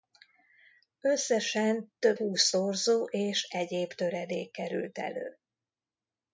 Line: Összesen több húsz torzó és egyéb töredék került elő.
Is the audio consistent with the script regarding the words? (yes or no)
yes